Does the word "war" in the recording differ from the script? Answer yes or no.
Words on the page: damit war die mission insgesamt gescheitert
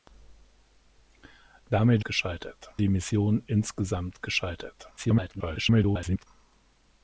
yes